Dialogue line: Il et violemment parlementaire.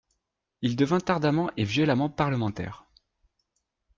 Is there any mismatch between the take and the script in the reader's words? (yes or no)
yes